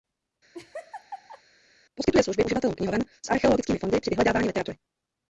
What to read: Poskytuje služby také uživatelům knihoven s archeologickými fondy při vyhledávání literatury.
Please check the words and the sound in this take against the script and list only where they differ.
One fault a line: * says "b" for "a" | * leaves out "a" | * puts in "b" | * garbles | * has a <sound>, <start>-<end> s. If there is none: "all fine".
* has a laugh, 0.5-1.4 s
* leaves out "také"